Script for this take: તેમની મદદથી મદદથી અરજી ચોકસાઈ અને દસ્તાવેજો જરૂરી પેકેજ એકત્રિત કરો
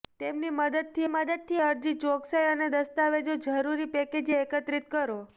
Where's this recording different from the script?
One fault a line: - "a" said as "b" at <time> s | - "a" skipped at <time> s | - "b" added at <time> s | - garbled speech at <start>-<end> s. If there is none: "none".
none